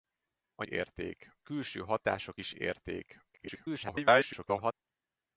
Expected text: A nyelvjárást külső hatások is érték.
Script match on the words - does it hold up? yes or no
no